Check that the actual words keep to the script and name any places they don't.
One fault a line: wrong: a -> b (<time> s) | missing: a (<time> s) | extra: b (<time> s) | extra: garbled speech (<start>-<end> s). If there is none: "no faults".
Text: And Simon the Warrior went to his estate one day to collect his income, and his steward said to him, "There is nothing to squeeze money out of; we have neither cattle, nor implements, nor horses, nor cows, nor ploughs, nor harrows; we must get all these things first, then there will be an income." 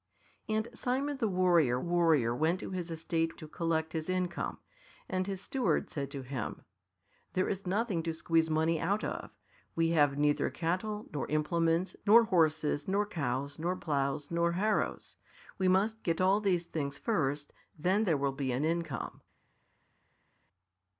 extra: Warrior (1.8 s)
missing: one day (3.4 s)